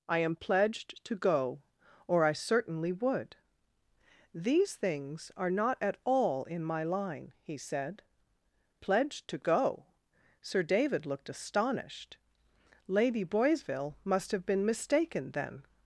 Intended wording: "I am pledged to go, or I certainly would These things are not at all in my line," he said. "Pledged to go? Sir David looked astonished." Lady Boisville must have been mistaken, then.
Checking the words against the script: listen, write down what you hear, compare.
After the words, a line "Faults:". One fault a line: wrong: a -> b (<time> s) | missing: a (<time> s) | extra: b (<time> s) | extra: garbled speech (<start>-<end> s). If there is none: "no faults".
"I am pledged to go, or I certainly would These things are not at all in my line," he said. "Pledged to go? Sir David looked astonished." Lady Boisville must have been mistaken, then.
Faults:
no faults